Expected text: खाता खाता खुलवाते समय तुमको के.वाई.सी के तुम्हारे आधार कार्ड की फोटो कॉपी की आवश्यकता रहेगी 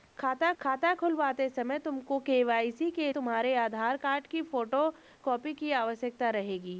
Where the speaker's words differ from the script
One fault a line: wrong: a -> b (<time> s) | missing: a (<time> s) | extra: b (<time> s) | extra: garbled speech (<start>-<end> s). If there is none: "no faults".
no faults